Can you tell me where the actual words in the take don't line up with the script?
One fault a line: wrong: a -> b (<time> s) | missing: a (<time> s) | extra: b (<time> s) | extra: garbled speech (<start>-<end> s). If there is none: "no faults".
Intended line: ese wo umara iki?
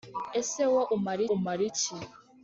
extra: umara (1.3 s)